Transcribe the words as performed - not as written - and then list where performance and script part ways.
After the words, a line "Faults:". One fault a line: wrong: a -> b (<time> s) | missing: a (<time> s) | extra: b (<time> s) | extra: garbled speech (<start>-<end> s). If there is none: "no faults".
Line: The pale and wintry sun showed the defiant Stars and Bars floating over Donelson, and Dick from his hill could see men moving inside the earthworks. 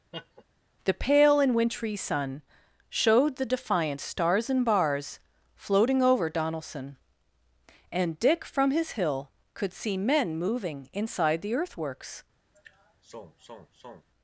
The pale and wintry sun showed the defiant Stars and Bars floating over Donelson, and Dick from his hill could see men moving inside the earthworks.
Faults:
no faults